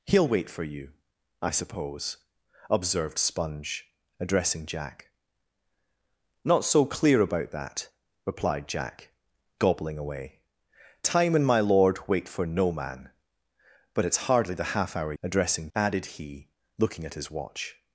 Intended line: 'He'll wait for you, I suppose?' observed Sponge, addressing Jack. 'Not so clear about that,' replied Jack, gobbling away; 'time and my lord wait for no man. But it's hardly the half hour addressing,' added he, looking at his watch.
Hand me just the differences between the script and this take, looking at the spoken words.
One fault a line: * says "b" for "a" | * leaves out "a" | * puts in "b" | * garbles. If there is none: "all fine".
all fine